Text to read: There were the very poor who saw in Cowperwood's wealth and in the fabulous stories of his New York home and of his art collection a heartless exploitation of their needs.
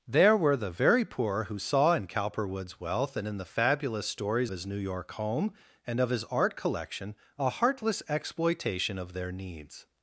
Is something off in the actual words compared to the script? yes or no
yes